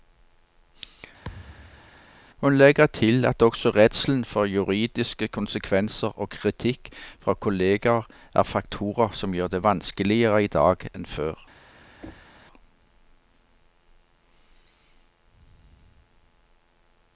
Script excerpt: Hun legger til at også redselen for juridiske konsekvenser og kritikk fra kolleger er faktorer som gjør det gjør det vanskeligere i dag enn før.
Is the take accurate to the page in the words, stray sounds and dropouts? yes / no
no